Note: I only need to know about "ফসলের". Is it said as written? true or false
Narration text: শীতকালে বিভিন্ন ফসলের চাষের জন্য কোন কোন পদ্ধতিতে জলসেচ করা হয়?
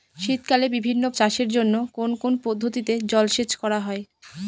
false